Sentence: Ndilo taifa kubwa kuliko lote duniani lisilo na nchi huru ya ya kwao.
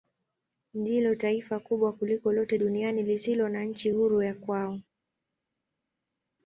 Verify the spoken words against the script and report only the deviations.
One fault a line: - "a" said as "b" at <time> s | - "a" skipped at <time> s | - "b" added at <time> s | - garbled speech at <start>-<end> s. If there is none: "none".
- "ya" skipped at 4.3 s